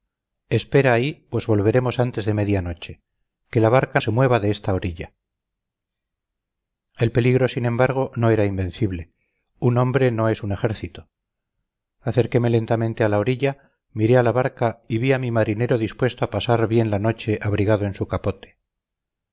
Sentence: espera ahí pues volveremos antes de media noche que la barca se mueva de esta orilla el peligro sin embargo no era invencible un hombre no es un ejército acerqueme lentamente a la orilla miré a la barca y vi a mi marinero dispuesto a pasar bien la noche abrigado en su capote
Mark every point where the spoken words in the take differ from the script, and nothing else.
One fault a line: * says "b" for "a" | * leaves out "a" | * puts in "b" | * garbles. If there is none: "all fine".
all fine